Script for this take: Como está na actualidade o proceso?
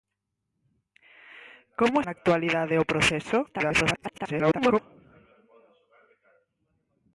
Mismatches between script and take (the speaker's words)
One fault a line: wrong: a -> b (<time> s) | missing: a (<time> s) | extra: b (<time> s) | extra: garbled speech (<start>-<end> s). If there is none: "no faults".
missing: está (2.0 s)
extra: garbled speech (3.5-4.8 s)